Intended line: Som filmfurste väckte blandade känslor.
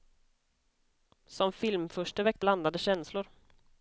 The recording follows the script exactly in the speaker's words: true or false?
true